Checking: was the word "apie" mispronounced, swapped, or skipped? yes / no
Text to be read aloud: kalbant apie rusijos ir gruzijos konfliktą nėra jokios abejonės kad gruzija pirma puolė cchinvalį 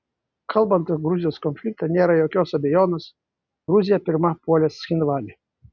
yes